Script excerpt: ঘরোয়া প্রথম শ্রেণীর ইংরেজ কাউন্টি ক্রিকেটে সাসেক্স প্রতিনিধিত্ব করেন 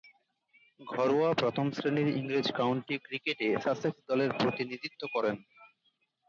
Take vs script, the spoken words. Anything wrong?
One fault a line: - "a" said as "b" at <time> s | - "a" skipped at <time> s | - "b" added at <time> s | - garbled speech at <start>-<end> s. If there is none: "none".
- "দলের" added at 4.1 s